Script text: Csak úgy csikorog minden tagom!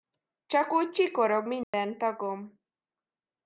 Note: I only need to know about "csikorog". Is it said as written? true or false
true